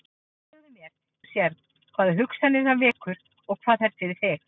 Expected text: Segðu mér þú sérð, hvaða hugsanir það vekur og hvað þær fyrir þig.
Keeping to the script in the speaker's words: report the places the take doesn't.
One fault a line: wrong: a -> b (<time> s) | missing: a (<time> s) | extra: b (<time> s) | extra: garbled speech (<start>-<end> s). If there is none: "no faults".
no faults